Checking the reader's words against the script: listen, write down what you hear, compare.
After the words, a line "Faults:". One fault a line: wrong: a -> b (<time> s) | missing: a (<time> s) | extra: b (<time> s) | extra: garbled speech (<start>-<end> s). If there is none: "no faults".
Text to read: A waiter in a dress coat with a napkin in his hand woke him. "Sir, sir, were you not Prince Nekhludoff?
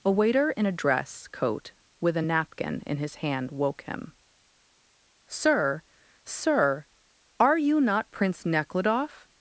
A waiter in a dress coat with a napkin in his hand woke him. "Sir, sir, are you not Prince Nekhludoff?
Faults:
wrong: were -> are (7.4 s)